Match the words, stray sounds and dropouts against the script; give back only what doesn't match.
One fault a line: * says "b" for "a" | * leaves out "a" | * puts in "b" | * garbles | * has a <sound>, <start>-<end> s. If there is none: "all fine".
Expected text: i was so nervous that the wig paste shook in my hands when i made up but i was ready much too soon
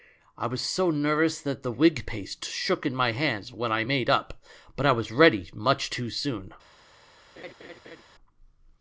* has a laugh, 7.4-8.0 s